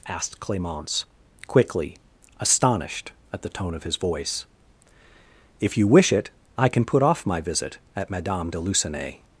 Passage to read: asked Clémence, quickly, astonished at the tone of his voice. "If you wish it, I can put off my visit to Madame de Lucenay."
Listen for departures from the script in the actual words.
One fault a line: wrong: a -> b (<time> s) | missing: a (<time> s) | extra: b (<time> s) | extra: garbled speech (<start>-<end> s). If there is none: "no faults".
wrong: to -> at (8.0 s)